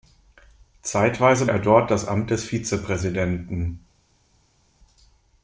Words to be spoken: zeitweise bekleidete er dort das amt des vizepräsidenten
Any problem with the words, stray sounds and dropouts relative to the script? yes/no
yes